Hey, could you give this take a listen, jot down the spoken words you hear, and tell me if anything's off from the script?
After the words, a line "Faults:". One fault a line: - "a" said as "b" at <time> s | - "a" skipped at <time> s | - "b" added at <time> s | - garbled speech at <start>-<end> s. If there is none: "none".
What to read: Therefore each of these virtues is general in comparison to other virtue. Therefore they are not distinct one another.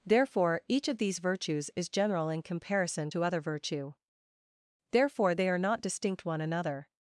Therefore each of these virtues is general in comparison to other virtue. Therefore they are not distinct one another.
Faults:
none